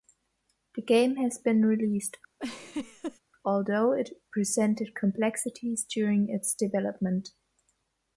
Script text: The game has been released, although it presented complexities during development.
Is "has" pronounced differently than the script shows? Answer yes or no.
no